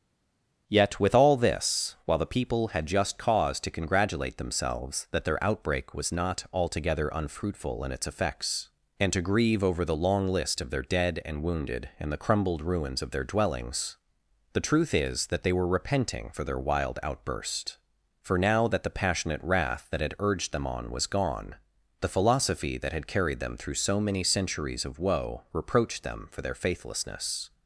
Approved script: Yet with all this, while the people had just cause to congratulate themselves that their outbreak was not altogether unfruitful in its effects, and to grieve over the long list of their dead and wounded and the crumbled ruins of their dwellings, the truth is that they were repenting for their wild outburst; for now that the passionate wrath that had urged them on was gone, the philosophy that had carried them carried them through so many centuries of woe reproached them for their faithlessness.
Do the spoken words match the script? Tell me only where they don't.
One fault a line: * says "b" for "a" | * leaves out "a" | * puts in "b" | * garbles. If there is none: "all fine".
* leaves out "carried them"